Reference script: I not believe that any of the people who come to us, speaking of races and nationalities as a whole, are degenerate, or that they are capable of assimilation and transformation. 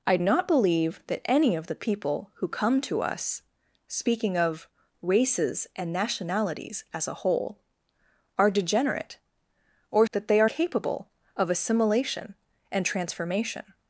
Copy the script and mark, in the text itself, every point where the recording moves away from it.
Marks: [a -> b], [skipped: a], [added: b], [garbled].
I not believe that any of the people who come to us, speaking of races and nationalities as a whole, are degenerate, or that they are capable of assimilation and transformation.